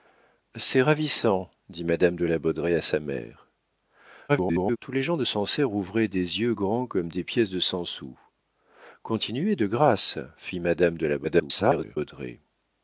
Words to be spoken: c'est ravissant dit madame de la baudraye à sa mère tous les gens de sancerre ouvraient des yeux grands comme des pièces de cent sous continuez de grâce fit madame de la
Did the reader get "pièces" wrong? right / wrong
right